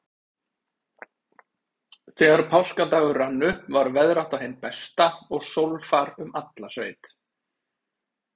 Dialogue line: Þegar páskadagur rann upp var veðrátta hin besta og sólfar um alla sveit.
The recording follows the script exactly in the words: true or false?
true